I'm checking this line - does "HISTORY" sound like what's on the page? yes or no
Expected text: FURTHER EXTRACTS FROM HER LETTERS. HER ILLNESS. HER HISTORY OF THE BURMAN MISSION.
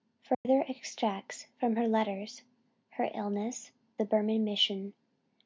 no